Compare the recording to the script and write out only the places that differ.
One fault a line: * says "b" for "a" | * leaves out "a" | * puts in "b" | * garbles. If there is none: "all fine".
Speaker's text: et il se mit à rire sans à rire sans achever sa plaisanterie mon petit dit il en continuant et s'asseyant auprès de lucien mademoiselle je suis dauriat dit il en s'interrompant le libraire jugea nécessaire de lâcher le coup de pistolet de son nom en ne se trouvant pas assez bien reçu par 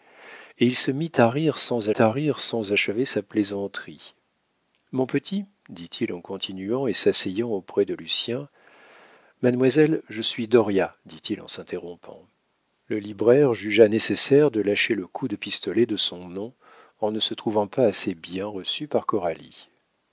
all fine